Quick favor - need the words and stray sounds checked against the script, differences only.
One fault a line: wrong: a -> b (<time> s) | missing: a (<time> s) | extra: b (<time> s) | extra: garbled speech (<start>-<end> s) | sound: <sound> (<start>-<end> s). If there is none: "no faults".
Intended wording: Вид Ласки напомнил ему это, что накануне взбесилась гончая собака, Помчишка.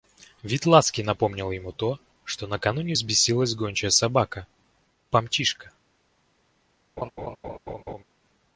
wrong: это -> то (1.7 s)
sound: laugh (7.0-8.0 s)